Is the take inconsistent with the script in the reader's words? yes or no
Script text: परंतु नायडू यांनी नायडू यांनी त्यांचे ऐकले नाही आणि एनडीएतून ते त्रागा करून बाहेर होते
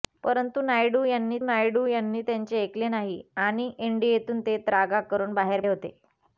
no